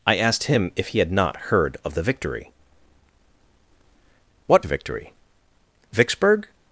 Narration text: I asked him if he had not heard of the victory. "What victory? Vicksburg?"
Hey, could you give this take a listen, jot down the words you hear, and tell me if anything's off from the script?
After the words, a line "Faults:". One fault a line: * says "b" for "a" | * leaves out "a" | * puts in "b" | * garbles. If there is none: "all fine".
I asked him if he had not heard of the victory. "What victory? Vicksburg?"
Faults:
all fine